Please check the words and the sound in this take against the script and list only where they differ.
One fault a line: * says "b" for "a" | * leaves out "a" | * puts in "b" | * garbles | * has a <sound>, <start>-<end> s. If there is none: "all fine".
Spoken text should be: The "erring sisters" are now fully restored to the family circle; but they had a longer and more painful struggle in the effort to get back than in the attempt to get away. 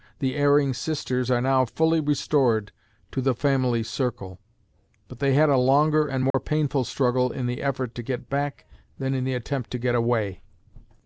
* has a dropout, 6.3-6.3 s